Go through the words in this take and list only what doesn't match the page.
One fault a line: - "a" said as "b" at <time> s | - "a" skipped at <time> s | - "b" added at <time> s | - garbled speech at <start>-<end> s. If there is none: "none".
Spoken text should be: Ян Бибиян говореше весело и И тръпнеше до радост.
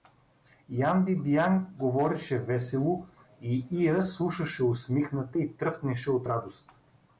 - "Иа слушаше усмихната" added at 3.7 s
- "до" said as "от" at 6.1 s